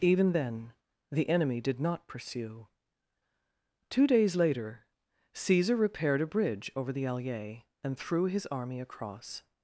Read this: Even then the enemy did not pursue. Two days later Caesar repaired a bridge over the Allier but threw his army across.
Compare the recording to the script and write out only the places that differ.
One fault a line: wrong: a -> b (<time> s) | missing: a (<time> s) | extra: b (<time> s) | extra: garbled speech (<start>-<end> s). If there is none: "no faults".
wrong: but -> and (7.8 s)